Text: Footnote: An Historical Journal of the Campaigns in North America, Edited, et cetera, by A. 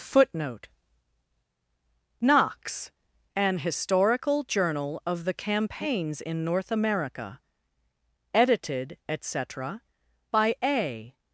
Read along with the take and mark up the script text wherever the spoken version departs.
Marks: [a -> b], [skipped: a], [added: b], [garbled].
Footnote: [added: Knox] An Historical Journal of the Campaigns in North America, Edited, et cetera, by A.